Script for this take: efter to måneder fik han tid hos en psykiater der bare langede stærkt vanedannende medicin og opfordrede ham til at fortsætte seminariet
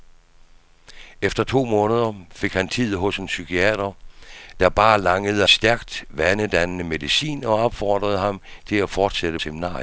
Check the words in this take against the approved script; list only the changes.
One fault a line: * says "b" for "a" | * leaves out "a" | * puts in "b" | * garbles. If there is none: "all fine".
all fine